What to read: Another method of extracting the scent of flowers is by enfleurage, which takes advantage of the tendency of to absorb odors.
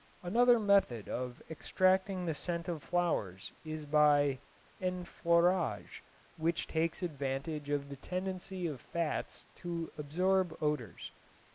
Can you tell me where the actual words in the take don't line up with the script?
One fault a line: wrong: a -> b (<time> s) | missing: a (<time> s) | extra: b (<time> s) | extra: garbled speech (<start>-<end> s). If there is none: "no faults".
extra: fats (8.8 s)